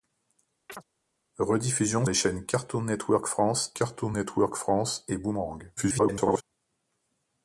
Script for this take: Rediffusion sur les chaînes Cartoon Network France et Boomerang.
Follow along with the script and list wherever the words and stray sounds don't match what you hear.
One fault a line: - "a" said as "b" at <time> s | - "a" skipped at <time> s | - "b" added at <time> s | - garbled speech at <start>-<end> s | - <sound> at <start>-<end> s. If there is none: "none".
- chirp at 0.7-0.8 s
- "sur" skipped at 2.1 s
- "Cartoon Network France" added at 3.7 s
- garbled speech at 5.8-6.4 s